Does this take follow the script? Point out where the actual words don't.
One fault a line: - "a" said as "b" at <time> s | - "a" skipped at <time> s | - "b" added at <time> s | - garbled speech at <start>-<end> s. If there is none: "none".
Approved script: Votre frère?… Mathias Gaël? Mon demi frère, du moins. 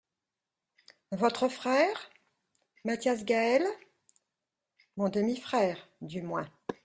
none